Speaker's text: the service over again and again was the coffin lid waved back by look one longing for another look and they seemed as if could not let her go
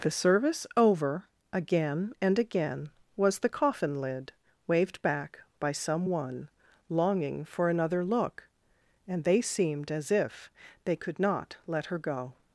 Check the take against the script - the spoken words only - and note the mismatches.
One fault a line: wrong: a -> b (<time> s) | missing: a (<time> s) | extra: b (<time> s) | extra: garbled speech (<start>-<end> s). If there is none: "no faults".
wrong: look -> some (5.7 s)
extra: they (10.8 s)